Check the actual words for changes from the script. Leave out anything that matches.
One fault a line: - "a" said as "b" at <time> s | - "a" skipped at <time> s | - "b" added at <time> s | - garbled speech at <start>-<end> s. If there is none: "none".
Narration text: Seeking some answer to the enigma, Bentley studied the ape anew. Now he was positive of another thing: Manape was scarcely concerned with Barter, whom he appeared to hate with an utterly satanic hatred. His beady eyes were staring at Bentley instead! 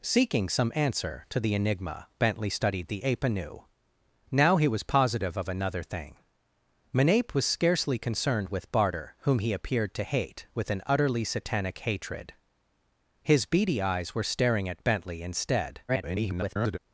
- garbled speech at 15.9-16.8 s